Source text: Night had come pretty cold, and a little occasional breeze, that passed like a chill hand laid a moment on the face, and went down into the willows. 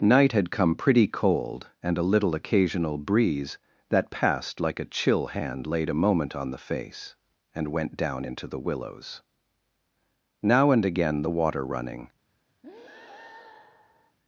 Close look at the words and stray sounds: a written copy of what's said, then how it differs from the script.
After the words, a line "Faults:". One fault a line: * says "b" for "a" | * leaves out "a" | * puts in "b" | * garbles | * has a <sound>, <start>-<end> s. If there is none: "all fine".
Night had come pretty cold, and a little occasional breeze, that passed like a chill hand laid a moment on the face, and went down into the willows. Now and again the water running
Faults:
* puts in "Now and again the water running"
* has a breath, 12.6-14.2 s